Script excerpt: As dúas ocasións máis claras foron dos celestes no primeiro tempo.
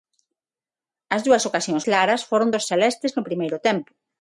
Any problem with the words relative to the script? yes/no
yes